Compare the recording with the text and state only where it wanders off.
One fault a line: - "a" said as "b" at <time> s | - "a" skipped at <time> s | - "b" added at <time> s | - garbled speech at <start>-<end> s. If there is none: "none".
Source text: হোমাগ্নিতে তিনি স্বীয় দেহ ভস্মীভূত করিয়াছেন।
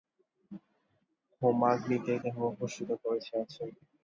- "তিনি স্বীয়" skipped at 2.1 s